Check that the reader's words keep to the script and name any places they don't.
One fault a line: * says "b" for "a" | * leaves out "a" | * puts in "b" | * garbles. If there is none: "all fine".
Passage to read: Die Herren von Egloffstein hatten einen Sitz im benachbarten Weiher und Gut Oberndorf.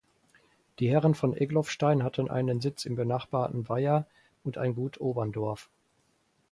* puts in "ein"